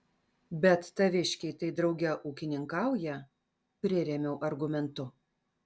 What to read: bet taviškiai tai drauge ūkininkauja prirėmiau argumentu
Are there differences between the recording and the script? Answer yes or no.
no